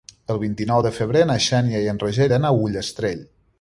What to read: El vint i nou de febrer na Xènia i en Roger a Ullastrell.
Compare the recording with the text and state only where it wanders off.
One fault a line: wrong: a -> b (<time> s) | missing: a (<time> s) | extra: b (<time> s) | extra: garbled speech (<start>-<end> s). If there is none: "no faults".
extra: iran (2.3 s)